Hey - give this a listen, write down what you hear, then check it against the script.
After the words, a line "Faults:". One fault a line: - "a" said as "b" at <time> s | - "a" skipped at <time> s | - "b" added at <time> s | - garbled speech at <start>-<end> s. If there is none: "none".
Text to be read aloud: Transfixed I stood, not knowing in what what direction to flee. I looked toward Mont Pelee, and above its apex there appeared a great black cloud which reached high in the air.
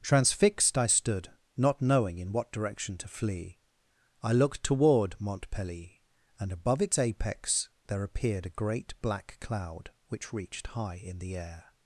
Transfixed I stood, not knowing in what direction to flee. I looked toward Mont Pelee, and above its apex there appeared a great black cloud which reached high in the air.
Faults:
- "what" skipped at 2.5 s